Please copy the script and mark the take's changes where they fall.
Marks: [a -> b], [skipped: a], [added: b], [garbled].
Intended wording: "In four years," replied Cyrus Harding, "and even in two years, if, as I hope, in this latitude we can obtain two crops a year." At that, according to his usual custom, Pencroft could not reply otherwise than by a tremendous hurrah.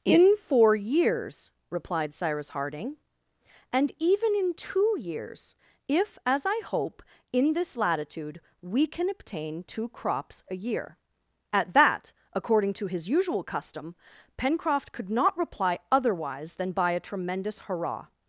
"In four years," replied Cyrus Harding, "and even in two years, if, as I hope, in this latitude we can obtain two crops a year." At that, according to his usual custom, Pencroft could not reply otherwise than by a tremendous hurrah.